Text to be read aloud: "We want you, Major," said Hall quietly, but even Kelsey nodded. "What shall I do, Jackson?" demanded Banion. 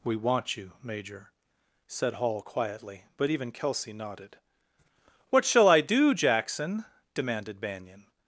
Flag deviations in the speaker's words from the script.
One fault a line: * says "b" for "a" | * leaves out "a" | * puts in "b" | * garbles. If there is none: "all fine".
all fine